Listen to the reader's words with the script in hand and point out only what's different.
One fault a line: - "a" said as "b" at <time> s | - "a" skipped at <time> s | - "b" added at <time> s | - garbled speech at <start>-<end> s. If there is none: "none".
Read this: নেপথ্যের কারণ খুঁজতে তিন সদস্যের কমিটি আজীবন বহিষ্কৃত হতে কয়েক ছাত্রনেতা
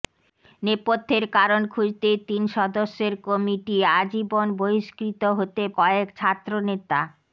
none